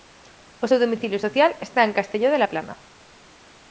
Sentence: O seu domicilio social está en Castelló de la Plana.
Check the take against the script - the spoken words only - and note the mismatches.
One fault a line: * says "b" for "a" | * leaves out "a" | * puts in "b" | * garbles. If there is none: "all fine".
all fine